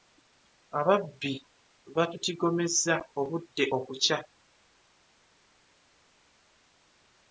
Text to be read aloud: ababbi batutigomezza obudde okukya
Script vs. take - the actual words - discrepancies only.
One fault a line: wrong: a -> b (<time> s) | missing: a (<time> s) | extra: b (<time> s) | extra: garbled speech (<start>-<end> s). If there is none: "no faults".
no faults